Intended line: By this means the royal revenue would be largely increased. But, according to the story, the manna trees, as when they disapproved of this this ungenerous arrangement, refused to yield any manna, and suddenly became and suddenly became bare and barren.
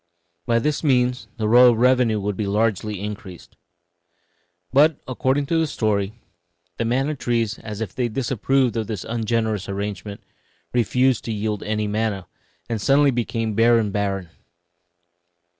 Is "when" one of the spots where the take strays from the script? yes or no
yes